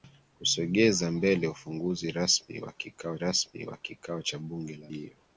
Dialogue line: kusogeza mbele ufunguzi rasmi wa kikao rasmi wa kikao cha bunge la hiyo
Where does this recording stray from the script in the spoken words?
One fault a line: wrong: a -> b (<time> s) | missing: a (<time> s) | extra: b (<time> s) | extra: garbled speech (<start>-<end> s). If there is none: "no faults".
no faults